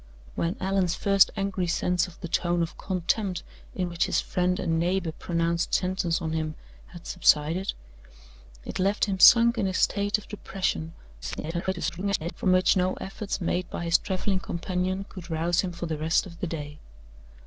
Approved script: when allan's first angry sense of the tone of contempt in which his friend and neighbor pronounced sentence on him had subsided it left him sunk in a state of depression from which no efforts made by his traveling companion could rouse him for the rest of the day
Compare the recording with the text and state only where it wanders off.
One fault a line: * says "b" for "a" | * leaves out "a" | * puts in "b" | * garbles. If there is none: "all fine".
* garbles